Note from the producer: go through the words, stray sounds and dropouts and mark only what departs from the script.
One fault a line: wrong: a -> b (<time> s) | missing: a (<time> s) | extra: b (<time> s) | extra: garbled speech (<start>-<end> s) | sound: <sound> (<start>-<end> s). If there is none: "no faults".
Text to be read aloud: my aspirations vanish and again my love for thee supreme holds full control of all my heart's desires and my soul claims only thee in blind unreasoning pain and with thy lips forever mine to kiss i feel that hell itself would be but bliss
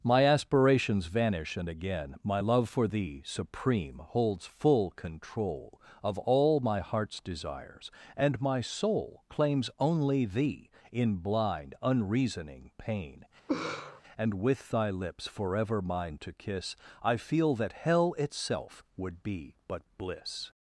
sound: laugh (13.5-14.0 s)